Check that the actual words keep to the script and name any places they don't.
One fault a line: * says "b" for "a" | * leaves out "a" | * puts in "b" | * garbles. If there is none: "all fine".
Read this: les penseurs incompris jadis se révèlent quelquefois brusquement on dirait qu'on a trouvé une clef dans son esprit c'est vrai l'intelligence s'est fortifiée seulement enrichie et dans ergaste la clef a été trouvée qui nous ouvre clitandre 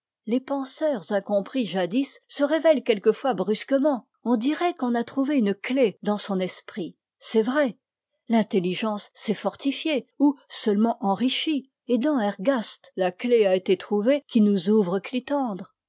* puts in "ou"